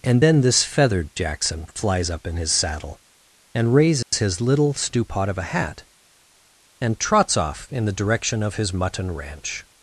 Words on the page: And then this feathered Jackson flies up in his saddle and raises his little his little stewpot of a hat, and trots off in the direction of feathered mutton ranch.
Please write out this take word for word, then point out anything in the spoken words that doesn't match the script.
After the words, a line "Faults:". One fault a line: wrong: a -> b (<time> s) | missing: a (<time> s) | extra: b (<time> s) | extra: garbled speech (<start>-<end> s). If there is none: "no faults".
And then this feathered Jackson flies up in his saddle and raises his little stewpot of a hat, and trots off in the direction of his mutton ranch.
Faults:
missing: his little (4.7 s)
wrong: feathered -> his (8.5 s)